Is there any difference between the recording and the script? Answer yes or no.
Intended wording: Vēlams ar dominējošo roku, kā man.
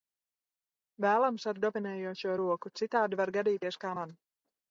yes